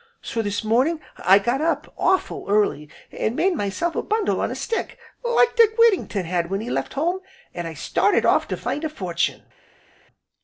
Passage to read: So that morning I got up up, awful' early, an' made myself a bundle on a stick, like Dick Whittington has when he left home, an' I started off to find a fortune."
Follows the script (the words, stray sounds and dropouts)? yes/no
no